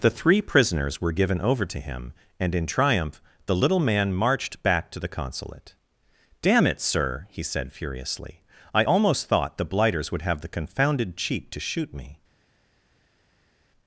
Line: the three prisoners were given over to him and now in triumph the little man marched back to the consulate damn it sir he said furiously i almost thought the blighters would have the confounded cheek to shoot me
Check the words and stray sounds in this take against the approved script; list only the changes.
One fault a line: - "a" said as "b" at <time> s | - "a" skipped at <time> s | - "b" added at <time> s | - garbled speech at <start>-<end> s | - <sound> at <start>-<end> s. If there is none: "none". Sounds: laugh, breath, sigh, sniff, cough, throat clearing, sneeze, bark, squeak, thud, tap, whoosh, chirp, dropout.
- "now" skipped at 2.5 s